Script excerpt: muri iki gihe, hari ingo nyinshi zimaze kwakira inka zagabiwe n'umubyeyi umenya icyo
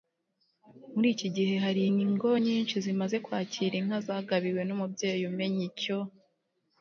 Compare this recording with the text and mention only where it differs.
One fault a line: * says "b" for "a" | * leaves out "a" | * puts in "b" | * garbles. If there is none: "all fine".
all fine